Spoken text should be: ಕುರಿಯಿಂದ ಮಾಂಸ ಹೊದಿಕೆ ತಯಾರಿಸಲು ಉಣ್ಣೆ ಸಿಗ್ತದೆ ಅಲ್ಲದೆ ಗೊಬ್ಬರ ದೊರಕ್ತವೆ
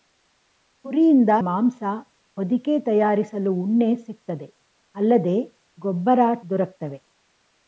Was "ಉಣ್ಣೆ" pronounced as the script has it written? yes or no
yes